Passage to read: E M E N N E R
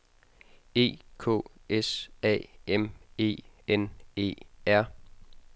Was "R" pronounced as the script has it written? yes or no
yes